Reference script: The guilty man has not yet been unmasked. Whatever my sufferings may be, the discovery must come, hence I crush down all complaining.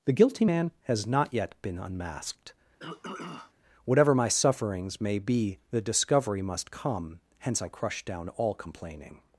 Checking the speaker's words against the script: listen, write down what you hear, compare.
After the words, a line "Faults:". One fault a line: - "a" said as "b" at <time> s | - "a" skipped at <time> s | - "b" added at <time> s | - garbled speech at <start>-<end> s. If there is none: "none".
The guilty man has not yet been unmasked. Whatever my sufferings may be, the discovery must come, hence I crush down all complaining.
Faults:
none